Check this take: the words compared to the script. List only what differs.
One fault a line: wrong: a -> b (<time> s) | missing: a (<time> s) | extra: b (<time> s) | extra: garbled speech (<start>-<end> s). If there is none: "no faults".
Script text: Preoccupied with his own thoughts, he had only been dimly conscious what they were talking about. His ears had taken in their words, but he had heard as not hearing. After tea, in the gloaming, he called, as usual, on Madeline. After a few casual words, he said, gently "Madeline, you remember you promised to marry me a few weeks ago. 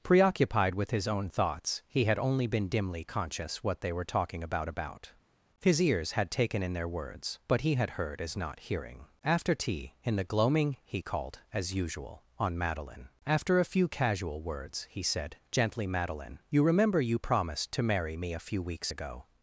extra: about (4.7 s)